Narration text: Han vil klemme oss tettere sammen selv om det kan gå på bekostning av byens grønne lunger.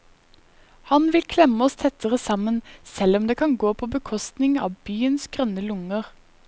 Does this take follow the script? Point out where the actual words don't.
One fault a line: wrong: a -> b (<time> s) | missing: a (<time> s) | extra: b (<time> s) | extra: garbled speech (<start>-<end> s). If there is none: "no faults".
no faults